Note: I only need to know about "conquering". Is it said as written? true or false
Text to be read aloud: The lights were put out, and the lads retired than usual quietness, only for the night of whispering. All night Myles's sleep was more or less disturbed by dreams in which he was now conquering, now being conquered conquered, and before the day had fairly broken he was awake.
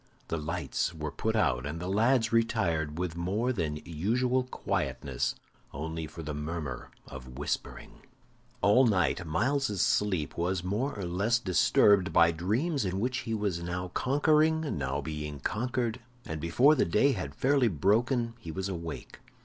true